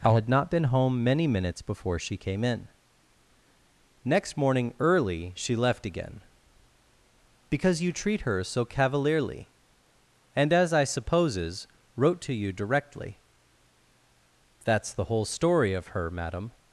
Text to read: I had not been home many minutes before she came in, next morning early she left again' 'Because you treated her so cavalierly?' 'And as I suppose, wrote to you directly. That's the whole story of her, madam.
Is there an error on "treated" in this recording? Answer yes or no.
yes